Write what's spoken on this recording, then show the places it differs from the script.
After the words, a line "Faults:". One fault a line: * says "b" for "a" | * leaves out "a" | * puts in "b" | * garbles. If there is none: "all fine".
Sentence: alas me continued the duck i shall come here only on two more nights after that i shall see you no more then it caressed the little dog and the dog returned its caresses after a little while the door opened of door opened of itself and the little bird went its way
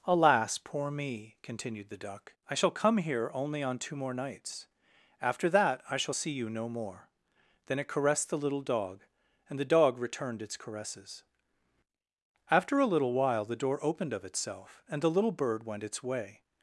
alas poor me continued the duck i shall come here only on two more nights after that i shall see you no more then it caressed the little dog and the dog returned its caresses after a little while the door opened of itself and the little bird went its way
Faults:
* puts in "poor"
* leaves out "door opened of"